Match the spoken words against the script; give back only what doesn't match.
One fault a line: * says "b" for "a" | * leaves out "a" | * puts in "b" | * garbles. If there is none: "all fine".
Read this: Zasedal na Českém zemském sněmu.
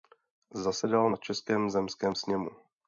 all fine